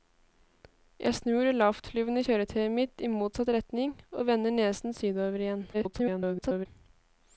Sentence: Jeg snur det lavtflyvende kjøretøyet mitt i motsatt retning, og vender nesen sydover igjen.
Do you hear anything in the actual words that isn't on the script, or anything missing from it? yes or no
yes